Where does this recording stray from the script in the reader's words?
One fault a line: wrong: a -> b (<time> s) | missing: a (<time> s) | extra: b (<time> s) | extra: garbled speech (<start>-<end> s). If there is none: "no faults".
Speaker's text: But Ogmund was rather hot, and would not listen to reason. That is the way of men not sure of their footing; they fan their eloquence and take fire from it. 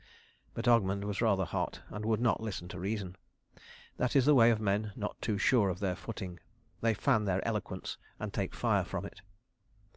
extra: too (5.2 s)